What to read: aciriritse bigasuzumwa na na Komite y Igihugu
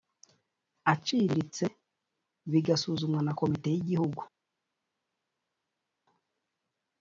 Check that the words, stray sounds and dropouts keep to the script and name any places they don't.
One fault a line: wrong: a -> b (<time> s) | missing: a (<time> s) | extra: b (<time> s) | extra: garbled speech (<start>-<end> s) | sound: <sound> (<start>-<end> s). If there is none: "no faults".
missing: na (3.3 s)